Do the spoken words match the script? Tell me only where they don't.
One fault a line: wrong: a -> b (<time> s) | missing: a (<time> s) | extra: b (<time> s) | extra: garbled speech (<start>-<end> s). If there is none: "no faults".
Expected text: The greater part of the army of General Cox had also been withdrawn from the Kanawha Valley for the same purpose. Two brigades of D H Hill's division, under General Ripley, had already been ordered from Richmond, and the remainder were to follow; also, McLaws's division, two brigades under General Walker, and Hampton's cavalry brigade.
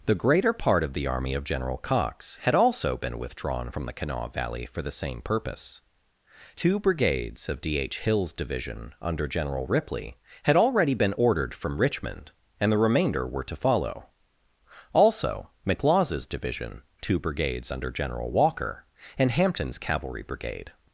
no faults